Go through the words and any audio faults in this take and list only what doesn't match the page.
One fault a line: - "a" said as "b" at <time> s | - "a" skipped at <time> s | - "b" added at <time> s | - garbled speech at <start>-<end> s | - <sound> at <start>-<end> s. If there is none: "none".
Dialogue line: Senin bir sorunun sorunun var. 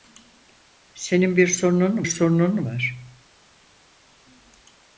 none